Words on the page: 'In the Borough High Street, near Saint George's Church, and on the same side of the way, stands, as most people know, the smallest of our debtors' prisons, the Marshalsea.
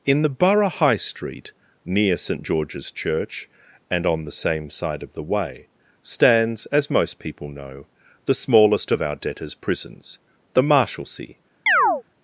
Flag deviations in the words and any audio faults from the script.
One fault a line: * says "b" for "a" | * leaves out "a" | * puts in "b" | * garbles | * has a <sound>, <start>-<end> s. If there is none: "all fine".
* has a chirp, 11.7-12.0 s